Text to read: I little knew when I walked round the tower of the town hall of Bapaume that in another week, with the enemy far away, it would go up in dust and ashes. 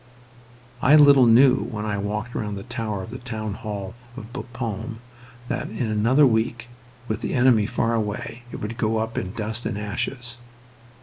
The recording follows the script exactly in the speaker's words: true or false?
true